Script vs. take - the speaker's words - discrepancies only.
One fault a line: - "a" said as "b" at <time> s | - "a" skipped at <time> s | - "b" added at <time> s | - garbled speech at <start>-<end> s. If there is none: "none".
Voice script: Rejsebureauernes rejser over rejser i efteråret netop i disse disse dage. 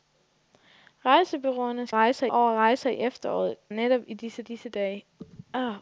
none